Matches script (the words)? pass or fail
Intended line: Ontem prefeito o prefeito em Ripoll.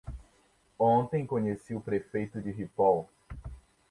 fail